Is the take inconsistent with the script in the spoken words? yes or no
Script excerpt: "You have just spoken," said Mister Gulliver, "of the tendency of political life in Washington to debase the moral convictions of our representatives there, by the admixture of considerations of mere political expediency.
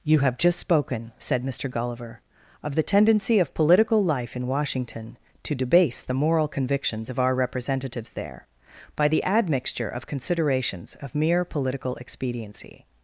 no